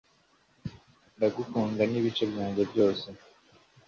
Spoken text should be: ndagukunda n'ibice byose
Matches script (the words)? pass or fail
fail